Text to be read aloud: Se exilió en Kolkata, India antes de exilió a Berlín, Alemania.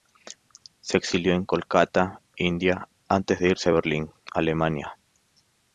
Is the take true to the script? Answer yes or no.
no